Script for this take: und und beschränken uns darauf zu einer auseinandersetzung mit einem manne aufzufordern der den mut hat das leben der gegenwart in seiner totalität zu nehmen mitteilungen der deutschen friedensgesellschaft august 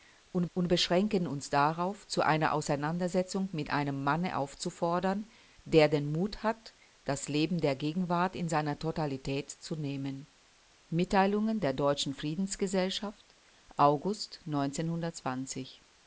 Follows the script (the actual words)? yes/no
yes